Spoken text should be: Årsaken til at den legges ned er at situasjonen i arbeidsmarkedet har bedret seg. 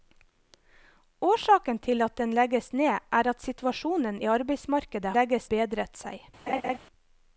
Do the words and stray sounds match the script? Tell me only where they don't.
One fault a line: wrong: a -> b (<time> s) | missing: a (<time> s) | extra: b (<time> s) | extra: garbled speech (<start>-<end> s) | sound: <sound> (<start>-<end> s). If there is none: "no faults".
wrong: har -> legges (5.2 s)
sound: laugh (6.5-6.8 s)